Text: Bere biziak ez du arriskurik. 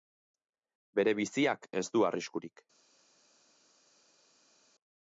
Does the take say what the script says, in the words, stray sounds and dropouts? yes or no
yes